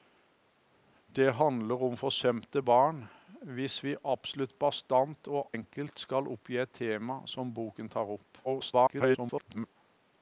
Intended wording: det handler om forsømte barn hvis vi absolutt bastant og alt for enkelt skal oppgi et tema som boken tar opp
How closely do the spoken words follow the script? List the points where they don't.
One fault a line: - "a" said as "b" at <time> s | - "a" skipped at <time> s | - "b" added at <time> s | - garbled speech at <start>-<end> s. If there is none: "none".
- "alt for" skipped at 5.5 s
- garbled speech at 8.4-9.8 s